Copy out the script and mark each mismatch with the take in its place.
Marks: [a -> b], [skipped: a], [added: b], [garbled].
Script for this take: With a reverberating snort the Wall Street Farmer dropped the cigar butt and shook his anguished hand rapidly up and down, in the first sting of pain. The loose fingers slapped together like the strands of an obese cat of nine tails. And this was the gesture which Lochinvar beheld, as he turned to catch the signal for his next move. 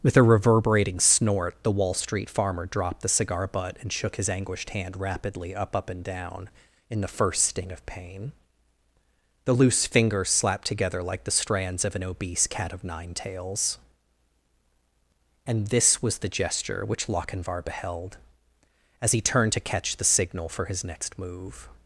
With a reverberating snort the Wall Street Farmer dropped the cigar butt and shook his anguished hand rapidly up [added: up] and down, in the first sting of pain. The loose fingers slapped together like the strands of an obese cat of nine tails. And this was the gesture which Lochinvar beheld, as he turned to catch the signal for his next move.